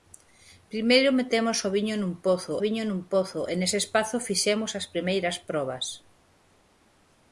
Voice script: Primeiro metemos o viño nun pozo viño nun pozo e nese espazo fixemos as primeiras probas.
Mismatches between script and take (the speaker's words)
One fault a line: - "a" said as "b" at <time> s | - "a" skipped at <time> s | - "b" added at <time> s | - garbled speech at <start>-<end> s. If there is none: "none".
none